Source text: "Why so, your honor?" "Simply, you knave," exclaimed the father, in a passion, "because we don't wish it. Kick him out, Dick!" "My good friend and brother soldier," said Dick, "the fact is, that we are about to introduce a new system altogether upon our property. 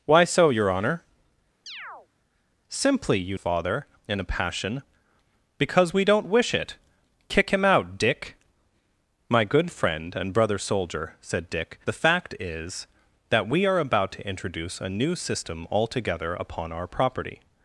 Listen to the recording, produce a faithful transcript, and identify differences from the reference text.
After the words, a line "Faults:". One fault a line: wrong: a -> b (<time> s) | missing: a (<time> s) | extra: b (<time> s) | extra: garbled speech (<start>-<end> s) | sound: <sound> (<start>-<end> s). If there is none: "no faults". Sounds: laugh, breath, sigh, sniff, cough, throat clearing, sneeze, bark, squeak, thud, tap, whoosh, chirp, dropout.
"Why so, your honor?" "Simply, you father, in a passion, "because we don't wish it. Kick him out, Dick!" "My good friend and brother soldier," said Dick, "the fact is, that we are about to introduce a new system altogether upon our property.
Faults:
sound: chirp (1.7-2.1 s)
missing: knave exclaimed the (3.4 s)